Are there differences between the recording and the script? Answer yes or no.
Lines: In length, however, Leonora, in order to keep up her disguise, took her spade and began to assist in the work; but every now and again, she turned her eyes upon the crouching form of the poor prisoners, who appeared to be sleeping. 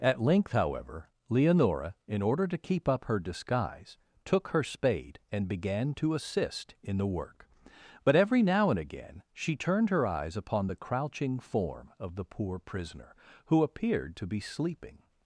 yes